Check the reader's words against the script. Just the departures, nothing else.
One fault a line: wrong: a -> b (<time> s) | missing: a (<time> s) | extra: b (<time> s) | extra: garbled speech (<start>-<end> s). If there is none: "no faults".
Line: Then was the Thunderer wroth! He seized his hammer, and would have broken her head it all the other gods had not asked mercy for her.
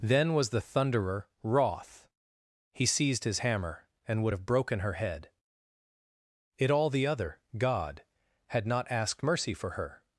wrong: gods -> god (7.6 s)